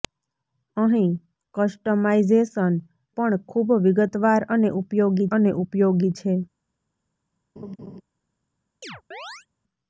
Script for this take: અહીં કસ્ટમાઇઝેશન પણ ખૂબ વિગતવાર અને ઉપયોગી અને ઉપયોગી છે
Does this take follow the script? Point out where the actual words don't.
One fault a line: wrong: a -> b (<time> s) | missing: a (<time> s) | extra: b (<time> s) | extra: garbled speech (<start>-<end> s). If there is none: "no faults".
no faults